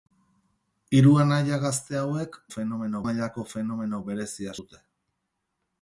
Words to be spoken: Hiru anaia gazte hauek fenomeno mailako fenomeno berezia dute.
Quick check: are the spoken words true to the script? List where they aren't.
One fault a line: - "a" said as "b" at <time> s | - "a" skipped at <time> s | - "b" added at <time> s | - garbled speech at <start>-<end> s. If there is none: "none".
none